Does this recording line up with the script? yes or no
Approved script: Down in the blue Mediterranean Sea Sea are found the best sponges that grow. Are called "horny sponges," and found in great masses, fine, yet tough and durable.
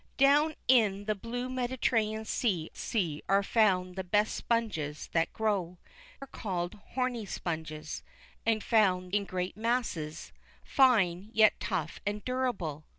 yes